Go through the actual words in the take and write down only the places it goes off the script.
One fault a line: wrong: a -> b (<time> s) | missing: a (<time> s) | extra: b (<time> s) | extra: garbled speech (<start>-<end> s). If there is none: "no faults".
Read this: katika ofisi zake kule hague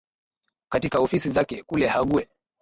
no faults